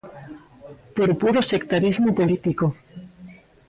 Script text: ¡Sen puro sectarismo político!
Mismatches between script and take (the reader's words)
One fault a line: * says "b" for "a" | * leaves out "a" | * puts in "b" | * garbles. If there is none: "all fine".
* says "Por" for "Sen"